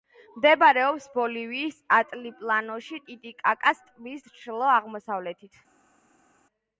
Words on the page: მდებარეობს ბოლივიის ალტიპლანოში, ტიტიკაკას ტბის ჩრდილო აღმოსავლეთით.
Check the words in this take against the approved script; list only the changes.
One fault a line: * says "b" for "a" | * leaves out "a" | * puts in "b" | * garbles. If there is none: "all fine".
all fine